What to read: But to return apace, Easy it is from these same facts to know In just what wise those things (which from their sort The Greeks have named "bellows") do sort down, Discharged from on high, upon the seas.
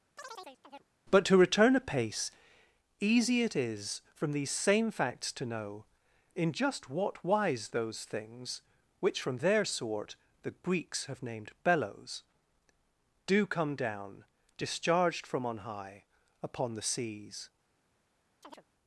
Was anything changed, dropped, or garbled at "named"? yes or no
no